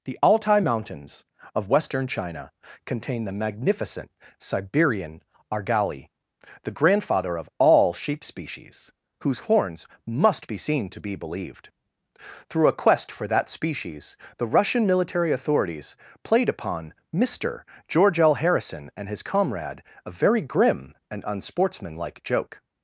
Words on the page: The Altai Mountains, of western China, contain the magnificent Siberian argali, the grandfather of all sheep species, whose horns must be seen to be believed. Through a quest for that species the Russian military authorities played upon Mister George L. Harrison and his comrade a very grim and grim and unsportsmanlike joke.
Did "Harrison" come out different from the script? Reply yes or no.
no